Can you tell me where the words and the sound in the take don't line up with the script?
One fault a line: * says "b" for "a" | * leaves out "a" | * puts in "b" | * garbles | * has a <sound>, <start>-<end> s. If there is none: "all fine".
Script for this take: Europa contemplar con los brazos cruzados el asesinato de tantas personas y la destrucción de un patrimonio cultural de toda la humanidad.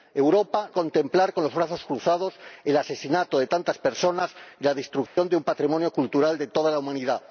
* has a dropout, 5.1-5.2 s